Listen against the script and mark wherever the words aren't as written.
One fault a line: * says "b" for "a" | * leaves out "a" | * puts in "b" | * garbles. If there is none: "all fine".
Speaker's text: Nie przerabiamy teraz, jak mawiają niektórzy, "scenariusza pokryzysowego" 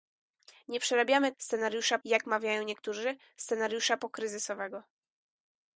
* says "scenariusza" for "teraz"